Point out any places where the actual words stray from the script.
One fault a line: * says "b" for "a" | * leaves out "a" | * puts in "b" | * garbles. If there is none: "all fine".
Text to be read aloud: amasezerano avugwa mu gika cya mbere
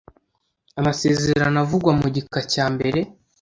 all fine